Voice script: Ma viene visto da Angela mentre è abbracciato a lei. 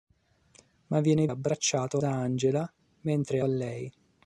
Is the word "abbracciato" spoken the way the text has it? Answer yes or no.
no